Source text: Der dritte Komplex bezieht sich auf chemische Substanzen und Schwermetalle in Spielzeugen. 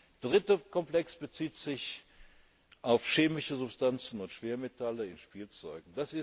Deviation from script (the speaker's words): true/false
false